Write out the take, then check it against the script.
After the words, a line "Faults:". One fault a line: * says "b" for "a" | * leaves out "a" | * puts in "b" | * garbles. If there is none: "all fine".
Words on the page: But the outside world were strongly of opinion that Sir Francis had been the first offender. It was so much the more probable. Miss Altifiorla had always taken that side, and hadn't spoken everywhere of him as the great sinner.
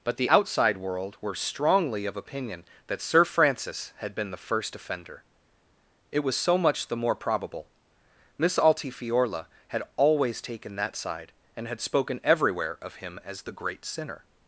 But the outside world were strongly of opinion that Sir Francis had been the first offender. It was so much the more probable. Miss Altifiorla had always taken that side, and had spoken everywhere of him as the great sinner.
Faults:
* says "had" for "hadn't"